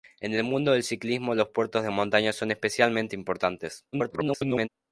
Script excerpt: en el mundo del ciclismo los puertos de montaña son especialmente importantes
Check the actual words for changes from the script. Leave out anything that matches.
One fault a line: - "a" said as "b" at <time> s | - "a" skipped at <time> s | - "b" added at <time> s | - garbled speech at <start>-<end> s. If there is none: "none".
- garbled speech at 3.9-4.7 s